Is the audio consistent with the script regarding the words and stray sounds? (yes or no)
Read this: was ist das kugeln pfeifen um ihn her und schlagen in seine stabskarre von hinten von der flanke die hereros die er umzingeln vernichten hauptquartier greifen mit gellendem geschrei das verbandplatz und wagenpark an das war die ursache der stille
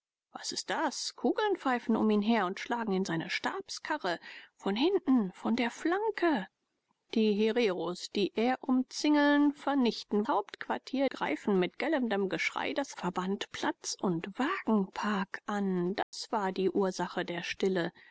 no